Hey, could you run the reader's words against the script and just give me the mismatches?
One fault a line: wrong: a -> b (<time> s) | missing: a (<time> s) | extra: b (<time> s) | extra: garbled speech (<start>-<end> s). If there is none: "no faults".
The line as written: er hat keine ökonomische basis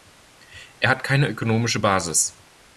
no faults